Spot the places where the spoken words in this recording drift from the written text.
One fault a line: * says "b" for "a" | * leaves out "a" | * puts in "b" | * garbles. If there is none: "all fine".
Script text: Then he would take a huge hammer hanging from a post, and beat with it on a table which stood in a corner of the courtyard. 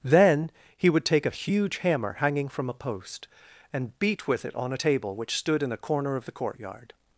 all fine